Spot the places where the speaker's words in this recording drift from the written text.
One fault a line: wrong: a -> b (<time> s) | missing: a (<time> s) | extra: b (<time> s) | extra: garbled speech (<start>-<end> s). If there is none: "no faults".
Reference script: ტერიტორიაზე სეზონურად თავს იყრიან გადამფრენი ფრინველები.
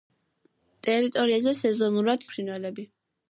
missing: თავს იყრიან გადამფრენი (2.2 s)